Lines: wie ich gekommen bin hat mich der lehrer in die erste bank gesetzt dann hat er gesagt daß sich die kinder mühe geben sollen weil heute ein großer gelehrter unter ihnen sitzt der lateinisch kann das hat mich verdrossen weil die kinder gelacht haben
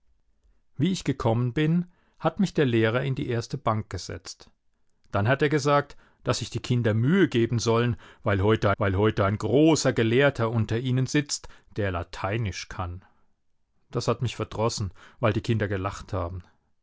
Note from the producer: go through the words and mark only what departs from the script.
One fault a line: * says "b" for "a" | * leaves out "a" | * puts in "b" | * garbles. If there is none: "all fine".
* puts in "weil heute"